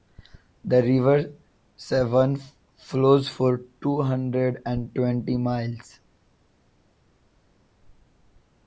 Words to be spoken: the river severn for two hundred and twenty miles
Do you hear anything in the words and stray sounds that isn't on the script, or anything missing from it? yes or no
yes